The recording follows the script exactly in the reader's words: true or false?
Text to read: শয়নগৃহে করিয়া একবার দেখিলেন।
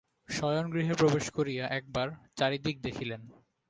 false